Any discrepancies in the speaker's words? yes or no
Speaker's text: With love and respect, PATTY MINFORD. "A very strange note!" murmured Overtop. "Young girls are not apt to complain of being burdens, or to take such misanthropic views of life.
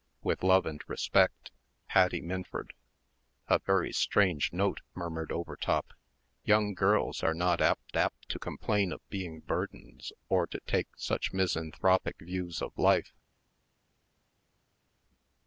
yes